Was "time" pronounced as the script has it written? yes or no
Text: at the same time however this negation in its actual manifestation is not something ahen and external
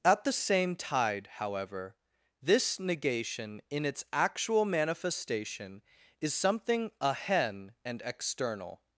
no